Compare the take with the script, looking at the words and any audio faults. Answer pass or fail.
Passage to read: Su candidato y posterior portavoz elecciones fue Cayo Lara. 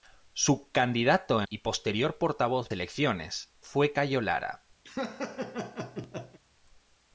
fail